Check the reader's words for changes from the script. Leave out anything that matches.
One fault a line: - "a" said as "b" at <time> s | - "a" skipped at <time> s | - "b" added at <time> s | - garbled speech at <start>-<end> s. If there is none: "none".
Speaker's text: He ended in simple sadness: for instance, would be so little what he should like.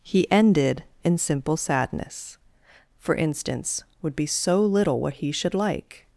none